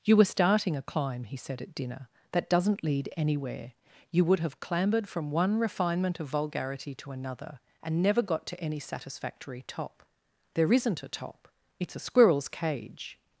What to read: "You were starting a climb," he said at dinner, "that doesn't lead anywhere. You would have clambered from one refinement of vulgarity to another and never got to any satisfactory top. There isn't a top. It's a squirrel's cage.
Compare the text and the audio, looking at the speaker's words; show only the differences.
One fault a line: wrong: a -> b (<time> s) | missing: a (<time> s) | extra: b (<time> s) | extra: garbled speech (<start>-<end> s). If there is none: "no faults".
no faults